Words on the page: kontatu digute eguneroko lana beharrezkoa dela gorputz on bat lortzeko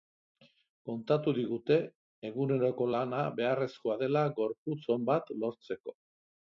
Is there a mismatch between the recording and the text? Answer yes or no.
no